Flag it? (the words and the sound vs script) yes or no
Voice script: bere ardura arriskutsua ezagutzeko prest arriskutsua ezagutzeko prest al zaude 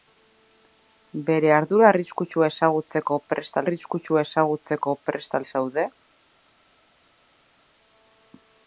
no